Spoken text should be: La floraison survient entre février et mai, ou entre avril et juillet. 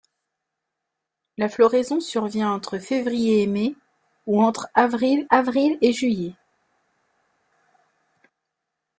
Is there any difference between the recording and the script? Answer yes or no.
yes